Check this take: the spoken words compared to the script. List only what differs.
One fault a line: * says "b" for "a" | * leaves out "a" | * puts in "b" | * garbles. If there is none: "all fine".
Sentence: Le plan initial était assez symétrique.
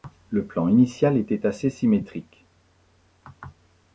all fine